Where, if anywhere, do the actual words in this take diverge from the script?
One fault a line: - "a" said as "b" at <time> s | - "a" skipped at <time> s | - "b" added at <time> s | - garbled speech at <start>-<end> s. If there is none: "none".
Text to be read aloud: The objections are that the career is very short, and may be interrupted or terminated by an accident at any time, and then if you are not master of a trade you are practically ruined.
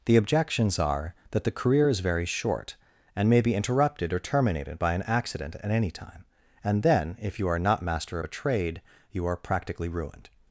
none